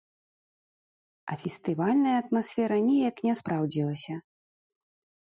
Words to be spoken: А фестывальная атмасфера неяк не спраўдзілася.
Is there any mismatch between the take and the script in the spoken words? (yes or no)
no